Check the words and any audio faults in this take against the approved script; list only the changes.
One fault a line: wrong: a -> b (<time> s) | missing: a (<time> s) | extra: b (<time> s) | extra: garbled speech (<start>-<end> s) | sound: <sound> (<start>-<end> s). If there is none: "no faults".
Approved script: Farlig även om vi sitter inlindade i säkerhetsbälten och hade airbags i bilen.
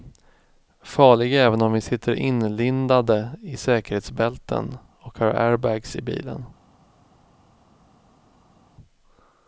wrong: hade -> har (5.2 s)